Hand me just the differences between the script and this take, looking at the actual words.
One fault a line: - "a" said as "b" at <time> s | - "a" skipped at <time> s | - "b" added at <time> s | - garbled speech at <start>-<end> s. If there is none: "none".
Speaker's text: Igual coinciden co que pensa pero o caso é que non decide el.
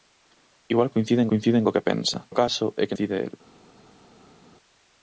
- "coinciden" added at 1.3 s
- "pero" skipped at 2.2 s
- "non" skipped at 3.0 s